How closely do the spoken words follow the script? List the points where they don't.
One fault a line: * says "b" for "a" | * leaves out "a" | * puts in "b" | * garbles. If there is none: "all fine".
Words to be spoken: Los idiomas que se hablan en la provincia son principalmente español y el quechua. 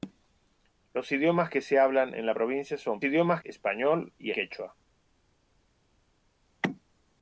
* says "idiomas" for "principalmente"
* leaves out "el"